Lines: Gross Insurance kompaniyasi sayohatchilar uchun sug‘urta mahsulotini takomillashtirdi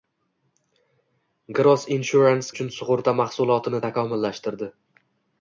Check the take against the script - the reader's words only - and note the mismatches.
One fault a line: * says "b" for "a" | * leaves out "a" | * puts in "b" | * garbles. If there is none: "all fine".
* leaves out "kompaniyasi sayohatchilar"